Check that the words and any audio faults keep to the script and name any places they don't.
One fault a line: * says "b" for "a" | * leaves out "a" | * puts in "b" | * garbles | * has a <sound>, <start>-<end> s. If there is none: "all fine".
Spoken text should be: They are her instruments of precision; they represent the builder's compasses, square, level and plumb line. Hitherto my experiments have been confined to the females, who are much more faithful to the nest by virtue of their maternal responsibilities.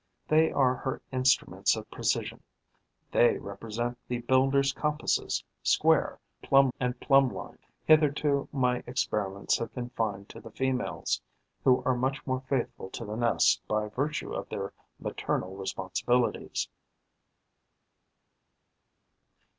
* says "plumb" for "level"
* leaves out "been"